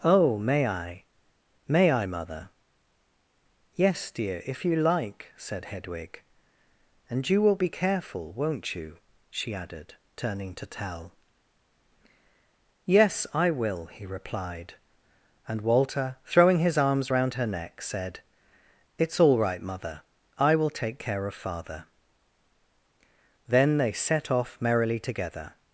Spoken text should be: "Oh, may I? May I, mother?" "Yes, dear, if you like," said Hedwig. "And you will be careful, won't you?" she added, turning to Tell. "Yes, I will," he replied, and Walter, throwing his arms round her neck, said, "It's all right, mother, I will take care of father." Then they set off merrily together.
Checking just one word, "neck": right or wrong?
right